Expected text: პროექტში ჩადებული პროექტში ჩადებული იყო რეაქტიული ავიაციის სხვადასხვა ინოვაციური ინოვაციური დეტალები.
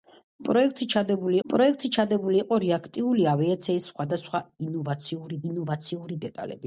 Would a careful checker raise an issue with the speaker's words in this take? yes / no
no